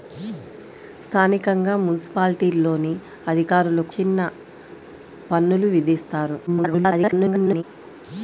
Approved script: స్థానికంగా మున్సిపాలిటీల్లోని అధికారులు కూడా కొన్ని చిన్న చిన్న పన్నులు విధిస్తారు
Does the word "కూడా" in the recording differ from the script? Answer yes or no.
yes